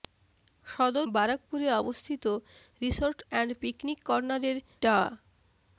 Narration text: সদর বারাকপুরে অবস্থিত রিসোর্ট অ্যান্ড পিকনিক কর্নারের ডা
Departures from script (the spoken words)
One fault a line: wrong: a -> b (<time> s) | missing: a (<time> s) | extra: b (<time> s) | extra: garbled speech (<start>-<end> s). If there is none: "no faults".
no faults